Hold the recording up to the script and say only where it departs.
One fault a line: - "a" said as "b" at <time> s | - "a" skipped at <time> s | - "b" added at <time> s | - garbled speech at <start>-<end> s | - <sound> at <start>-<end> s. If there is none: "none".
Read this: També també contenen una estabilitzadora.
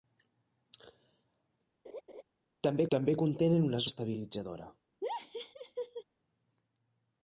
- laugh at 1.8-2.2 s
- laugh at 5.0-6.0 s